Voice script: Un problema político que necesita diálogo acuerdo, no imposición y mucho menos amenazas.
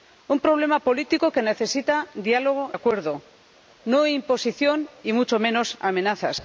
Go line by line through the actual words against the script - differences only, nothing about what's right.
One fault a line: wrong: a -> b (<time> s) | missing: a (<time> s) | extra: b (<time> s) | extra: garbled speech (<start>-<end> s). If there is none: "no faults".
no faults